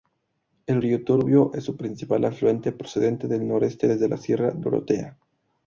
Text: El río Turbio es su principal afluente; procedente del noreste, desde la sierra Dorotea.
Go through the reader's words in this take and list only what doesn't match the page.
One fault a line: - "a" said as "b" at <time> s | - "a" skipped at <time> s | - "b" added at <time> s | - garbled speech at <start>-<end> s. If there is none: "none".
none